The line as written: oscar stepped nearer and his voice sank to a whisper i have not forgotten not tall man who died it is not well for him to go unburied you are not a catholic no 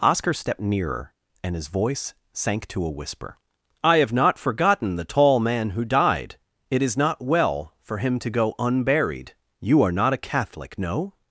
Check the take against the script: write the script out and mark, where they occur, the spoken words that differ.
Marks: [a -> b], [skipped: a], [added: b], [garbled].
oscar stepped nearer and his voice sank to a whisper i have not forgotten [not -> the] tall man who died it is not well for him to go unburied you are not a catholic no